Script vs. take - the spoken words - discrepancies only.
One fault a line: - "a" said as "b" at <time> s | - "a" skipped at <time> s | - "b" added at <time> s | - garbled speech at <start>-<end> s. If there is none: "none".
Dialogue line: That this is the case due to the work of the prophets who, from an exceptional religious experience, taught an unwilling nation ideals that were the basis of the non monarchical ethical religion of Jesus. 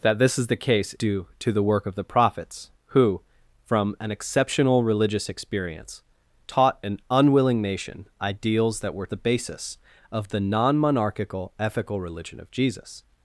none